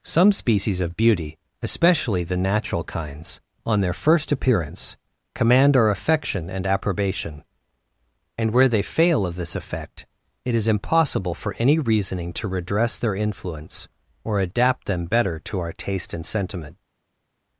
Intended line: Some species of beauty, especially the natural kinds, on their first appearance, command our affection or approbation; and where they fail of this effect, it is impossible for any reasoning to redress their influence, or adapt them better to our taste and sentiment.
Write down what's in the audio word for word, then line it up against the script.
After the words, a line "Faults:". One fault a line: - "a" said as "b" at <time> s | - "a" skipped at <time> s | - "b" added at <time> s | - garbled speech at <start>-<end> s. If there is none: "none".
Some species of beauty, especially the natural kinds, on their first appearance, command our affection and approbation; and where they fail of this effect, it is impossible for any reasoning to redress their influence, or adapt them better to our taste and sentiment.
Faults:
- "or" said as "and" at 6.5 s